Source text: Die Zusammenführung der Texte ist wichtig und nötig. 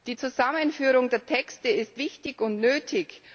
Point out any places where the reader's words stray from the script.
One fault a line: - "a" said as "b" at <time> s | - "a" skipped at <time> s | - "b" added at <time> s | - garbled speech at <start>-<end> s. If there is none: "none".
none